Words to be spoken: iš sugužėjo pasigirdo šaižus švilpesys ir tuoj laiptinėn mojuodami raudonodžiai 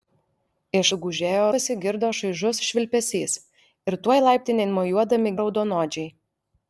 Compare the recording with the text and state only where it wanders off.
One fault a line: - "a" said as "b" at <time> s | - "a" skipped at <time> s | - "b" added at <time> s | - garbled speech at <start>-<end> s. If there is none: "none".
none